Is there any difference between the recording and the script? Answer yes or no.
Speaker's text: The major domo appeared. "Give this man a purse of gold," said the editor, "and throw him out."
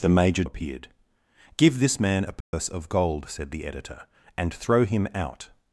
yes